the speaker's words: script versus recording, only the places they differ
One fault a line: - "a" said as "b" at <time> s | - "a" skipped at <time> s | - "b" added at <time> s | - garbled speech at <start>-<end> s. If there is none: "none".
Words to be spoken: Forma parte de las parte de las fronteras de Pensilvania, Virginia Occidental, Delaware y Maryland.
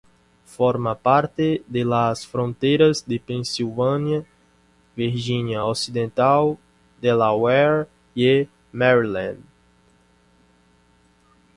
- "parte de las" skipped at 2.3 s